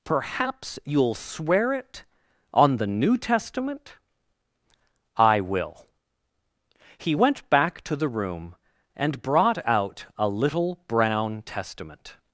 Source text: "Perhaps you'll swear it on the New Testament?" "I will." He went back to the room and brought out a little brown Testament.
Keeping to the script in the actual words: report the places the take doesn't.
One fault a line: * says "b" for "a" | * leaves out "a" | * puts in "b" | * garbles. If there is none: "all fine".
all fine